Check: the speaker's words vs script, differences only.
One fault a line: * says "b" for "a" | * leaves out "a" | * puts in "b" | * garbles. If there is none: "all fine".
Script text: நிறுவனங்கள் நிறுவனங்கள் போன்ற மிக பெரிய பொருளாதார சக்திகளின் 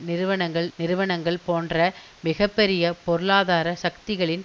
all fine